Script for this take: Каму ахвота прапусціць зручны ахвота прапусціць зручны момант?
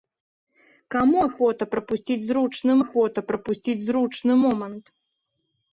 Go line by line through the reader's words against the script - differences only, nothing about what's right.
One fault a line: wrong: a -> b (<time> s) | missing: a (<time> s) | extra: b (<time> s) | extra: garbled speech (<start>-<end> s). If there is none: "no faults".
no faults